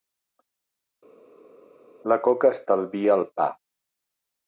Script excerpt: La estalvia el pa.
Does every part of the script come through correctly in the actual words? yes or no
no